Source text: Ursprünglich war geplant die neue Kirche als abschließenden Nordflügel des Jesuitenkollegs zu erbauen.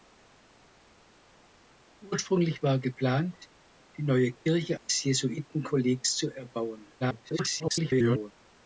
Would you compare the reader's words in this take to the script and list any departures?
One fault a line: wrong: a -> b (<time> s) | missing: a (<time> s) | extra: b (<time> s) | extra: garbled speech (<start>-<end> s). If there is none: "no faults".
missing: als abschließenden Nordflügel (4.8 s)
extra: garbled speech (7.0-8.3 s)